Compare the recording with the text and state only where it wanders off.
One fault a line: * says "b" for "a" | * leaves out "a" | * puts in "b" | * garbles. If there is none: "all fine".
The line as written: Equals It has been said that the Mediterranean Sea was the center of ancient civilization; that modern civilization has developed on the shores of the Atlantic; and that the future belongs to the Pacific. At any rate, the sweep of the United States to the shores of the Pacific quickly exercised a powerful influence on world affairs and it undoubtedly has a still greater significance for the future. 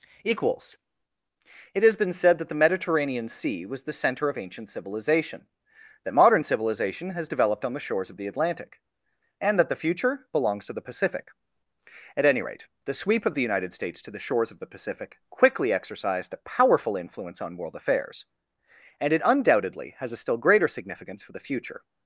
all fine